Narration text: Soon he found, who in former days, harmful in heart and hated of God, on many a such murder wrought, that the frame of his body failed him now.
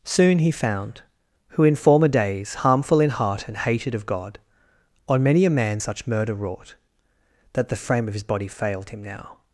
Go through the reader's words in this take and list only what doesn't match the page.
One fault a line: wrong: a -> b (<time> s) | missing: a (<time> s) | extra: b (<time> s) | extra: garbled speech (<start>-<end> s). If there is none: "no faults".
extra: man (5.5 s)